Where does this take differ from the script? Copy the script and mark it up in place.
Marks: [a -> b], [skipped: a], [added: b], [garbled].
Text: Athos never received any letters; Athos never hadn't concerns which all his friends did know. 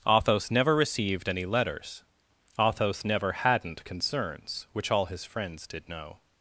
Athos never received any letters; Athos never hadn't concerns which all his friends did know.